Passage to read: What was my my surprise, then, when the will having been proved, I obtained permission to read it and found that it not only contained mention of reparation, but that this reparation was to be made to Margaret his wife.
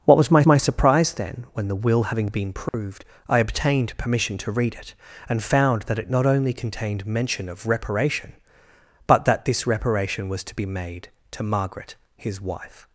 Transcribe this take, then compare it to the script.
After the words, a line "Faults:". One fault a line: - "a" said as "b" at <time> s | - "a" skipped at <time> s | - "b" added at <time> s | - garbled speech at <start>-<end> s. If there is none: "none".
What was my my surprise, then, when the will having been proved, I obtained permission to read it and found that it not only contained mention of reparation, but that this reparation was to be made to Margaret his wife.
Faults:
none